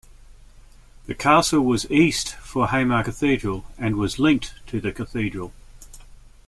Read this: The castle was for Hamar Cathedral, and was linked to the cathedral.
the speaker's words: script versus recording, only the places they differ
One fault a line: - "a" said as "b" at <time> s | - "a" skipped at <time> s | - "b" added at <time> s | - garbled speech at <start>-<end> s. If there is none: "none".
- "east" added at 1.9 s